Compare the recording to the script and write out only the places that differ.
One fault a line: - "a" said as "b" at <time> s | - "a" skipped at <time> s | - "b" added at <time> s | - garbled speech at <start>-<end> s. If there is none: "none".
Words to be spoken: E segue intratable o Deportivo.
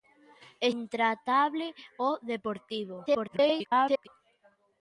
- "segue" skipped at 0.7 s
- garbled speech at 3.1-4.1 s